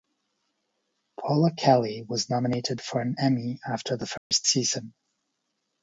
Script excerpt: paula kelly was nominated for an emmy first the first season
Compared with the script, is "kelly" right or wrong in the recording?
right